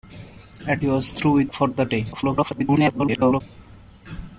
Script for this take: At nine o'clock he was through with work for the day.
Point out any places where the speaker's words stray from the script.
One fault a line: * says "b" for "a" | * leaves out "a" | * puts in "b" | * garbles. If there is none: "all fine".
* leaves out "nine o'clock"
* leaves out "work"
* garbles